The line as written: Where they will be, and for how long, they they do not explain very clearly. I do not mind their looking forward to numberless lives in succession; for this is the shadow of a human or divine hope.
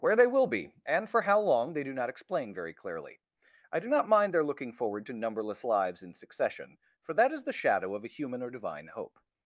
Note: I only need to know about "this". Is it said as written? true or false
false